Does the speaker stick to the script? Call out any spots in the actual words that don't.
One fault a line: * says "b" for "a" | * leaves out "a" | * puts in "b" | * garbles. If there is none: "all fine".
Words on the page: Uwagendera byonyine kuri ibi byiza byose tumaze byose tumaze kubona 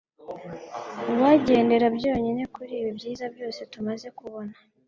* leaves out "byose tumaze"